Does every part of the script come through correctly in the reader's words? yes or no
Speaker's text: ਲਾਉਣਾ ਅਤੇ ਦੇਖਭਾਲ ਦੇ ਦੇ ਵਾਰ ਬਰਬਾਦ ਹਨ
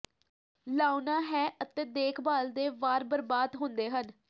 no